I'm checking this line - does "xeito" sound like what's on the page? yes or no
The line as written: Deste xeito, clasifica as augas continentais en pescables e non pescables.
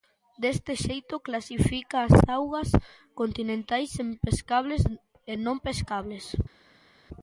yes